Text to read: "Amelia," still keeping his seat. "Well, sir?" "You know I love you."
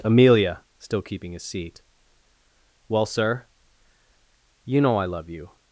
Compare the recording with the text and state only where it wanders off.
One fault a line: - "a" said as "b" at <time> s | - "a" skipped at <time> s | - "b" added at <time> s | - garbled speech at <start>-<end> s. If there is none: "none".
none